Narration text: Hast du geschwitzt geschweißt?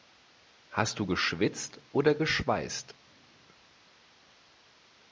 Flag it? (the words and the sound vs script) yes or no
yes